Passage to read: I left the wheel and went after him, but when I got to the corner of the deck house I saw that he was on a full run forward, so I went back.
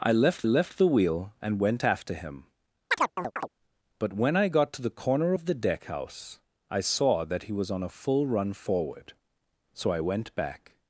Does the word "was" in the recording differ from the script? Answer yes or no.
no